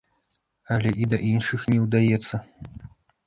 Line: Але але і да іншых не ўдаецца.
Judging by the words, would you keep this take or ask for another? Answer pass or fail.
fail